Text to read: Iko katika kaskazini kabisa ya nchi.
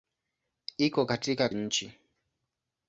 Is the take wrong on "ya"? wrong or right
wrong